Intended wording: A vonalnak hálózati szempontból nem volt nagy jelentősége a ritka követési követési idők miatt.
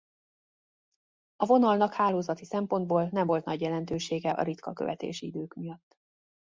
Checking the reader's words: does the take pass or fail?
fail